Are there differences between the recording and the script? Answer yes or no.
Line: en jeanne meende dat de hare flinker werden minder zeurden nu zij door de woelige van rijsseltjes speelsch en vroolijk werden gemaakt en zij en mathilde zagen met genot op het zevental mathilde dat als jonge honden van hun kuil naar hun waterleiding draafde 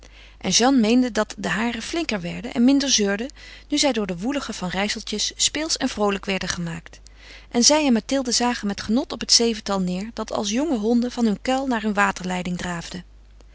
yes